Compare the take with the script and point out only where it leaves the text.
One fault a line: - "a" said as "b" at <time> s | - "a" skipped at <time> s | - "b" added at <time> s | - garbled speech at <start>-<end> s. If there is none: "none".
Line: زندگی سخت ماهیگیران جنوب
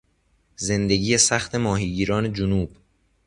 none